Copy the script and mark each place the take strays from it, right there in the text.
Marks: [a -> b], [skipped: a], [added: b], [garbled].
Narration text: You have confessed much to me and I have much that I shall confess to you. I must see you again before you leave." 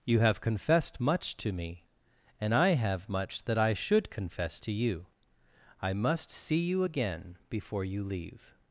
You have confessed much to me and I have much that I [shall -> should] confess to you. I must see you again before you leave."